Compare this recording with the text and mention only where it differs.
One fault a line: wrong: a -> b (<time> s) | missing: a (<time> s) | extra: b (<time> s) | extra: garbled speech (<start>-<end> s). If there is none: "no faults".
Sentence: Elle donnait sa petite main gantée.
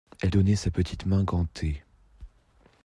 no faults